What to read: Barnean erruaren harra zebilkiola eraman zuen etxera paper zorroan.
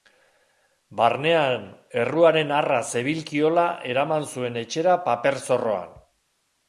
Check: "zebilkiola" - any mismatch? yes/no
no